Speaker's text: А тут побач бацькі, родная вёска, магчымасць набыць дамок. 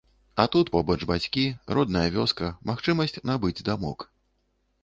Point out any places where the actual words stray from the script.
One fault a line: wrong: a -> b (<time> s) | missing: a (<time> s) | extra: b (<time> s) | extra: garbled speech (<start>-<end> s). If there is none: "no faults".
no faults